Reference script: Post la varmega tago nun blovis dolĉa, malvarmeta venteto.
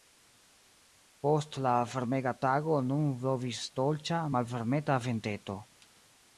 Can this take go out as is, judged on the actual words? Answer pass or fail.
pass